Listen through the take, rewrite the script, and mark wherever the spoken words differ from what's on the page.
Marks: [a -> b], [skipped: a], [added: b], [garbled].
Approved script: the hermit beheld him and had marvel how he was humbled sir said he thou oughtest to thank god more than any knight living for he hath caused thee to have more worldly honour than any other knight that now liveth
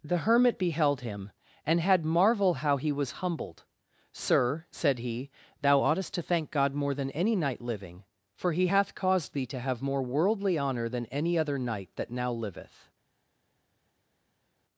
the hermit beheld him and had marvel how he was humbled sir said he thou oughtest to thank god more than any knight living for he hath caused thee to have more worldly honour than any other knight that now liveth